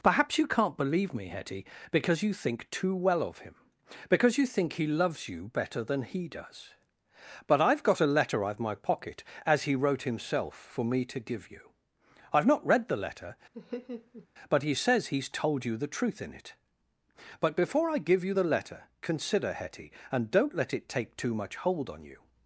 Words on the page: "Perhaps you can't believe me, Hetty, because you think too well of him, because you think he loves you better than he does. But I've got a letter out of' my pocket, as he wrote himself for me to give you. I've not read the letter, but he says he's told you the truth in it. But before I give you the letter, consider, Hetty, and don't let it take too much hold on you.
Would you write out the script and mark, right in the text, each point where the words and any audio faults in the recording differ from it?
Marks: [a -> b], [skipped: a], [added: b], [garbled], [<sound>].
"Perhaps you can't believe me, Hetty, because you think too well of him, because you think he loves you better than he does. But I've got a letter out of' my pocket, as he wrote himself for me to give you. I've not read the letter, [laugh] but he says he's told you the truth in it. But before I give you the letter, consider, Hetty, and don't let it take too much hold on you.